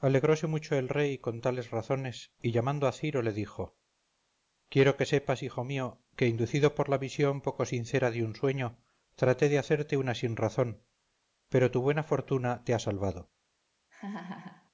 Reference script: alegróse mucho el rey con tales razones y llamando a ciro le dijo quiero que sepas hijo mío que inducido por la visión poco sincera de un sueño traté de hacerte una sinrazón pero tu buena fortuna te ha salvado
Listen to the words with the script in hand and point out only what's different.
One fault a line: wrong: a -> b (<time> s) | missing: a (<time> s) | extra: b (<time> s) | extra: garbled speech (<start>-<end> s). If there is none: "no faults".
no faults